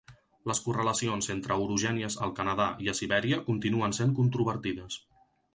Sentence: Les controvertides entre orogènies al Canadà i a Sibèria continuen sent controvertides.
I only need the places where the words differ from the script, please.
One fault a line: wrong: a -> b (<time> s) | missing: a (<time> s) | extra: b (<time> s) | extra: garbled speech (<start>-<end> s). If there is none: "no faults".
wrong: controvertides -> correlacions (0.7 s)